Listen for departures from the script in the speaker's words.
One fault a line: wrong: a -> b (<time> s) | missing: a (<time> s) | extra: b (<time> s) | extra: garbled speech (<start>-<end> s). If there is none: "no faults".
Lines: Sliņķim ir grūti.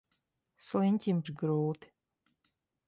no faults